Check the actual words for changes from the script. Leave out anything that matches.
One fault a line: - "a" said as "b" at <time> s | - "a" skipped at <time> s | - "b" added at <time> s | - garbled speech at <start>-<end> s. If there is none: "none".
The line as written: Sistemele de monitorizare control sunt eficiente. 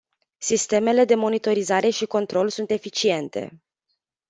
- "și" added at 1.9 s